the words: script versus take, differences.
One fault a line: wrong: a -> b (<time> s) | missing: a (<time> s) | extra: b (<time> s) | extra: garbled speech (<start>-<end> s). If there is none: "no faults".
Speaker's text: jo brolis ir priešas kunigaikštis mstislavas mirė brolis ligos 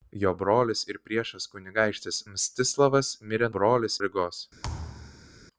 no faults